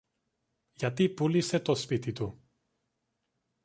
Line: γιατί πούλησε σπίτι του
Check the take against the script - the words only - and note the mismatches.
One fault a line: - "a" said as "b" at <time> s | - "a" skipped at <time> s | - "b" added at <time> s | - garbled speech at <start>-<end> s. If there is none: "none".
- "το" added at 1.6 s